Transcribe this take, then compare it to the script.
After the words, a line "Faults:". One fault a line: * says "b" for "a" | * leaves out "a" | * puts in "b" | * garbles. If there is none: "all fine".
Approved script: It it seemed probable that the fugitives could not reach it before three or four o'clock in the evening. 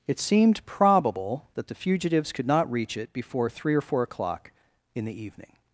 It seemed probable that the fugitives could not reach it before three or four o'clock in the evening.
Faults:
* leaves out "it"